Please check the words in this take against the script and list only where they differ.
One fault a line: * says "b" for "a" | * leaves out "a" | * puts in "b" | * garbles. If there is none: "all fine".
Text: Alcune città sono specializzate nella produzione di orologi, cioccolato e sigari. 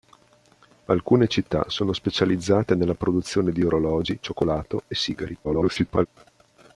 * garbles